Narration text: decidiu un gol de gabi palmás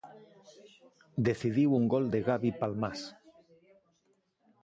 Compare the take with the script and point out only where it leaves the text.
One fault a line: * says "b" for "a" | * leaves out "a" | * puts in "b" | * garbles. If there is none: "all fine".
all fine